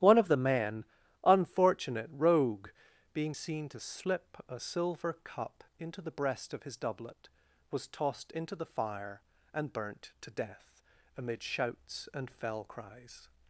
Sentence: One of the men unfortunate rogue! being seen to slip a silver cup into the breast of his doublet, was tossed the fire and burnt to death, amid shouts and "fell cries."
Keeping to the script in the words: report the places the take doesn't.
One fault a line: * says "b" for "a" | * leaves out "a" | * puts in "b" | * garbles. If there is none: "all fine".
* puts in "into"